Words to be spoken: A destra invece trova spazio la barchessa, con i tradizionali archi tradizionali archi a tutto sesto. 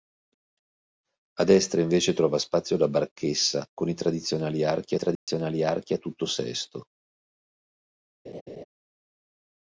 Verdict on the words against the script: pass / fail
pass